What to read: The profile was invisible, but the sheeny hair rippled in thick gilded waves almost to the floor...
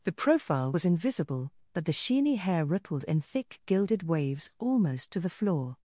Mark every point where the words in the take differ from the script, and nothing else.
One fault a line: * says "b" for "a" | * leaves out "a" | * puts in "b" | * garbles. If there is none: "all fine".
all fine